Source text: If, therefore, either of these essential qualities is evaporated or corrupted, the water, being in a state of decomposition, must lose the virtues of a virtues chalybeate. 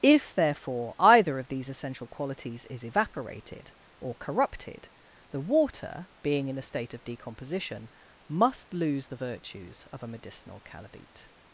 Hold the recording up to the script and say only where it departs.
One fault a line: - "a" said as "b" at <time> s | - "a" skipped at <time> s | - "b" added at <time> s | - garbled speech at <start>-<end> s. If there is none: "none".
- "virtues" said as "medicinal" at 10.1 s